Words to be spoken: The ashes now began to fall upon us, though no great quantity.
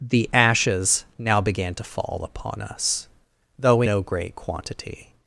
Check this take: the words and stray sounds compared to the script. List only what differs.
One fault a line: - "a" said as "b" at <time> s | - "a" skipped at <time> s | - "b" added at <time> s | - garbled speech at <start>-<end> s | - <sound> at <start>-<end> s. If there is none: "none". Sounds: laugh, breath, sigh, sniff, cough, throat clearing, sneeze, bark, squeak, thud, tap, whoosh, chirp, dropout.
none